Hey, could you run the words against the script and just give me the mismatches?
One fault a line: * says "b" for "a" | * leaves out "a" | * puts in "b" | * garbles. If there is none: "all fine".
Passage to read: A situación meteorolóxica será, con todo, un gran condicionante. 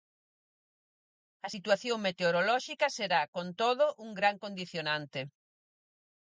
all fine